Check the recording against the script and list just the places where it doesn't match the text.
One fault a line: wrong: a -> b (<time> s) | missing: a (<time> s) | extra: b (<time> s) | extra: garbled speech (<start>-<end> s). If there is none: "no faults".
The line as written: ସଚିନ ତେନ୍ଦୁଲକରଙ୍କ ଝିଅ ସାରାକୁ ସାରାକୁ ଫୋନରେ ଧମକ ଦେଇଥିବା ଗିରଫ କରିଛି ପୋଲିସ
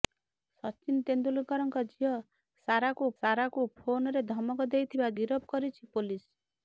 no faults